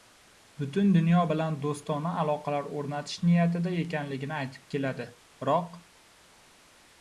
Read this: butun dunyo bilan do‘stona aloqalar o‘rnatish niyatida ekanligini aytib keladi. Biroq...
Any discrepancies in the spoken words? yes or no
no